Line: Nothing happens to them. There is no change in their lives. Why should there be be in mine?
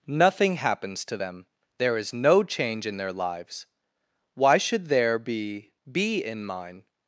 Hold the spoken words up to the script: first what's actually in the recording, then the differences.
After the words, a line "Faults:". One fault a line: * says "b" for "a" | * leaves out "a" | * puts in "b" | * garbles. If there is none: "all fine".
Nothing happens to them. There is no change in their lives. Why should there be be in mine?
Faults:
all fine